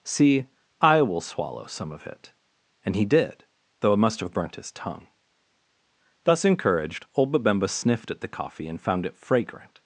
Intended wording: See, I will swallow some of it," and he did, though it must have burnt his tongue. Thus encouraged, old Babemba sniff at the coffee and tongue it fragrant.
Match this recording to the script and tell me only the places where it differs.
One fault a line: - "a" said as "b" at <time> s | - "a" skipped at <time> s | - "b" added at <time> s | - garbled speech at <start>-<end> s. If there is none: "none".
- "sniff" said as "sniffed" at 7.7 s
- "tongue" said as "found" at 8.8 s